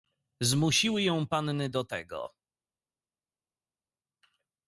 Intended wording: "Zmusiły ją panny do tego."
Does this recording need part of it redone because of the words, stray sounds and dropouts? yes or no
no